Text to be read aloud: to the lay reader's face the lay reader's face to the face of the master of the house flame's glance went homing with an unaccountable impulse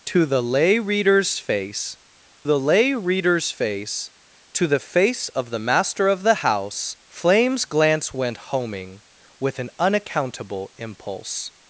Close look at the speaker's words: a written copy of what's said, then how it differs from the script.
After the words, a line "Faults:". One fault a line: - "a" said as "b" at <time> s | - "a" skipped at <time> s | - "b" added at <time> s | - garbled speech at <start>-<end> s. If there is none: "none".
to the lay reader's face the lay reader's face to the face of the master of the house flame's glance went homing with an unaccountable impulse
Faults:
none